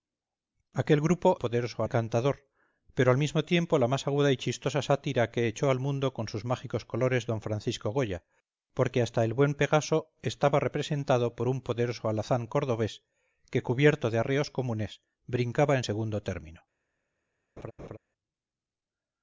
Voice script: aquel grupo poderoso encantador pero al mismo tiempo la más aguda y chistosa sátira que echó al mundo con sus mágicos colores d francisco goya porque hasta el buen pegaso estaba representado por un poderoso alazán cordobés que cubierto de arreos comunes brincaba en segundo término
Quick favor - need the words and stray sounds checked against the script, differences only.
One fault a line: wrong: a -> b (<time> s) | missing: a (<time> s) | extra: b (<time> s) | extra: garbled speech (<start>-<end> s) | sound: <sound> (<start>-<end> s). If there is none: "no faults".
sound: laugh (17.6-18.0 s)